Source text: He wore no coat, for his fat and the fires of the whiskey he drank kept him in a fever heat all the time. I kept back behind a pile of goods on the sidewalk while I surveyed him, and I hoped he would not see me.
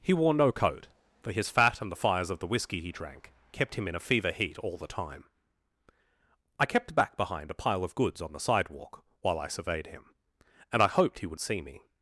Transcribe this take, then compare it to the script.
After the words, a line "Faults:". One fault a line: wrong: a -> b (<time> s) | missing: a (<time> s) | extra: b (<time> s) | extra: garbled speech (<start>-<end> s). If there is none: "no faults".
He wore no coat, for his fat and the fires of the whiskey he drank kept him in a fever heat all the time. I kept back behind a pile of goods on the sidewalk while I surveyed him, and I hoped he would see me.
Faults:
missing: not (11.4 s)